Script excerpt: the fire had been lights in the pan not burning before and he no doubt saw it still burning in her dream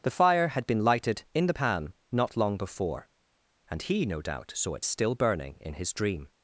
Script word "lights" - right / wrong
wrong